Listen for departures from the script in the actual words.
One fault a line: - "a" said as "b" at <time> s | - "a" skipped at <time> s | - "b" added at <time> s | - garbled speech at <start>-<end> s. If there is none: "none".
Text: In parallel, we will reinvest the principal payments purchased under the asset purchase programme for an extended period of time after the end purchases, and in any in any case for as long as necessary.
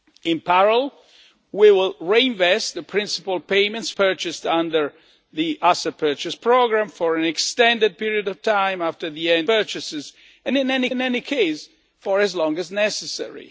none